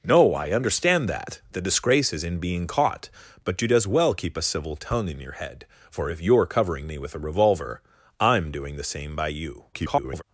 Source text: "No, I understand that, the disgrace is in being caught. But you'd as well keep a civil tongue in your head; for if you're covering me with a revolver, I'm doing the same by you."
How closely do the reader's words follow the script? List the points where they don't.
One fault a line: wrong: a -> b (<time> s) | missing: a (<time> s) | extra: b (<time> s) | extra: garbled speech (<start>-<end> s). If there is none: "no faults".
extra: garbled speech (9.7-10.2 s)